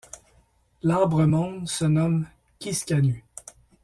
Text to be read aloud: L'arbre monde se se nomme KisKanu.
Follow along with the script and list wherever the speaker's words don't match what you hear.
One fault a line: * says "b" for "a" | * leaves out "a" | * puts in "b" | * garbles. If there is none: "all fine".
* leaves out "se"